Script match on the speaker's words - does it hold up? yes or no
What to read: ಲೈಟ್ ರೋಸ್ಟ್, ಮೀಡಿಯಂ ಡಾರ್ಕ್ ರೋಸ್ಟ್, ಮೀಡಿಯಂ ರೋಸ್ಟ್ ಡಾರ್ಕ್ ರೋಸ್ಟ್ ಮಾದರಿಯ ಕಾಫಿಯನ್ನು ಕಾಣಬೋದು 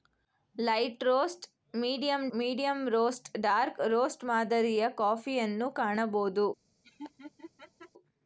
no